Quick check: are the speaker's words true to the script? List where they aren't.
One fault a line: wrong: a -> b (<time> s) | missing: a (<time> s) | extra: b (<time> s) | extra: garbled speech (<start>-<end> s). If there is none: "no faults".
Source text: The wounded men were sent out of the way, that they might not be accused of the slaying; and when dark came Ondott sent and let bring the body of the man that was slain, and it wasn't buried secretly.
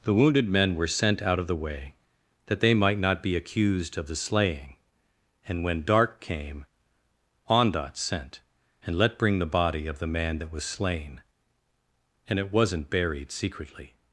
no faults